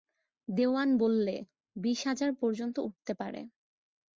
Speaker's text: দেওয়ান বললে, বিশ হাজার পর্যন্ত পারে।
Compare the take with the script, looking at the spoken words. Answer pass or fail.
fail